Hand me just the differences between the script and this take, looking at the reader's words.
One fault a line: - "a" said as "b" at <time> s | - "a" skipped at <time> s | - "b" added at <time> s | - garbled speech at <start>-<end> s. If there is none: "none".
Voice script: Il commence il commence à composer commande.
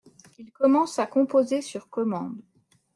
- "il commence" skipped at 1.0 s
- "sur" added at 1.6 s